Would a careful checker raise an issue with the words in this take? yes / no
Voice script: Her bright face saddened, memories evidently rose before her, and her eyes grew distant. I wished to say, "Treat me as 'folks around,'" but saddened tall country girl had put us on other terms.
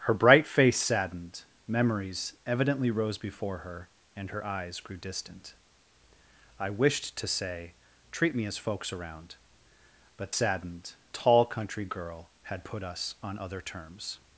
no